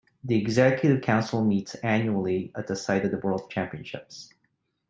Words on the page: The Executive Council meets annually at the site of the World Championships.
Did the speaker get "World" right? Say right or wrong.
right